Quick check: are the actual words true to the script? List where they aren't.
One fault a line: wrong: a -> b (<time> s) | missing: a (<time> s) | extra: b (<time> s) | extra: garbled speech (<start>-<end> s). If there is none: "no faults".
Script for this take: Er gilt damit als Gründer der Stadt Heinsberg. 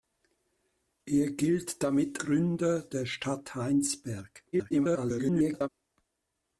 missing: als (2.2 s)
extra: garbled speech (4.5-5.7 s)